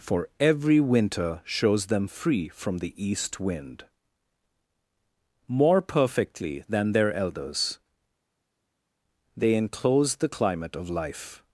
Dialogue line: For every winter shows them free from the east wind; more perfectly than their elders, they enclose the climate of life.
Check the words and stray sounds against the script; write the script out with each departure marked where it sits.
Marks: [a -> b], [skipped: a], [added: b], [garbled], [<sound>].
For every winter shows them free from the east wind; more perfectly than their elders, they enclose the climate of life.